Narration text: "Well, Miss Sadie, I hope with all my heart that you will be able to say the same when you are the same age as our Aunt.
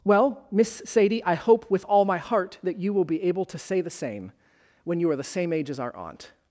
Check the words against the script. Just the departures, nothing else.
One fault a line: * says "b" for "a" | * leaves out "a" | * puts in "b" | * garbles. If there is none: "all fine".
all fine